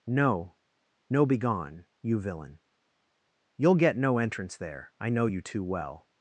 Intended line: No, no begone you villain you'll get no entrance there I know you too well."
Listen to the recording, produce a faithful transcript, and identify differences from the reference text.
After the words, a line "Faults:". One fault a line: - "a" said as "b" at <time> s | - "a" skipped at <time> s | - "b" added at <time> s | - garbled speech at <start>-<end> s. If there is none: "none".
No, no begone you villain you'll get no entrance there I know you too well."
Faults:
none